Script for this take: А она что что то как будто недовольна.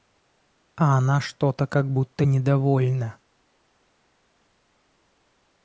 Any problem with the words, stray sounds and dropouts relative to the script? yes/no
yes